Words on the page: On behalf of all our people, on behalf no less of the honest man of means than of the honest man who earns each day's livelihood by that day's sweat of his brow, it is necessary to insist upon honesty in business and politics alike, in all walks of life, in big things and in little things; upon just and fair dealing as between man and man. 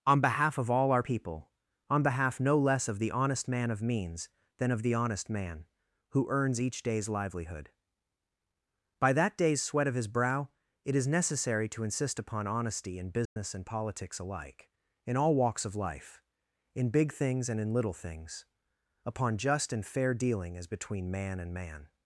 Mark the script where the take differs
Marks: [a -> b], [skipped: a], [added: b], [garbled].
On behalf of all our people, on behalf no less of the honest man of means than of the honest man who earns each day's livelihood by that day's sweat of his brow, it is necessary to insist upon honesty in business and politics alike, in all walks of life, in big things and in little things; upon just and fair dealing as between man and man.